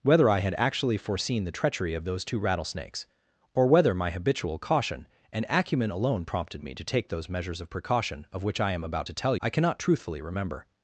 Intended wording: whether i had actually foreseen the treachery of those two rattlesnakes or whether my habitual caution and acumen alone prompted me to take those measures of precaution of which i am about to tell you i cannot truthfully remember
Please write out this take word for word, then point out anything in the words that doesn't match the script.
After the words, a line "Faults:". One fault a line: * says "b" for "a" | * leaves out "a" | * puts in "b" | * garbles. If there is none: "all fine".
whether i had actually foreseen the treachery of those two rattlesnakes or whether my habitual caution and acumen alone prompted me to take those measures of precaution of which i am about to tell i cannot truthfully remember
Faults:
* leaves out "you"